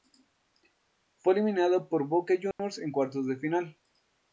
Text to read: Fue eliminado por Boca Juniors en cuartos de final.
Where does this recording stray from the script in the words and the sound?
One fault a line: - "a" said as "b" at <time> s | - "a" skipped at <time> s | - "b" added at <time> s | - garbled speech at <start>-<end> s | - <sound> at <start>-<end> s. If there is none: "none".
- dropout at 2.5-2.6 s